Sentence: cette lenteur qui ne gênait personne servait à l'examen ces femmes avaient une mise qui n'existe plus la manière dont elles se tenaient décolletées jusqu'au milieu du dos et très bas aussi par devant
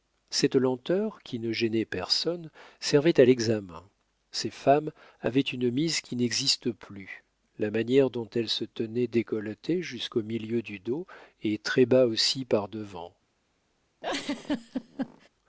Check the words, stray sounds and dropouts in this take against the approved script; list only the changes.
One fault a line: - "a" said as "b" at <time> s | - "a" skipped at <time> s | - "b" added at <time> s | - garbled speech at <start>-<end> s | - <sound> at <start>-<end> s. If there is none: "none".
- laugh at 14.0-15.3 s